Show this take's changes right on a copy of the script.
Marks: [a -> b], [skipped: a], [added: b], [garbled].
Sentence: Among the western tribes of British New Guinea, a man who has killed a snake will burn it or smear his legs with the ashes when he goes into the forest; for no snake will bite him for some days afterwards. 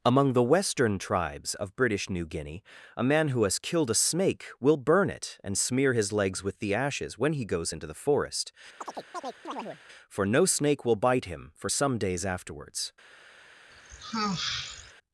Among the western tribes of British New Guinea, a man who has killed a snake will burn it [or -> and] smear his legs with the ashes when he goes into the forest; for no snake will bite him for some days afterwards.